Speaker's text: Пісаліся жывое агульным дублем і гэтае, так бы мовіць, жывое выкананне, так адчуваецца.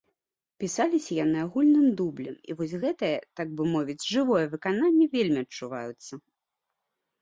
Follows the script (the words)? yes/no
no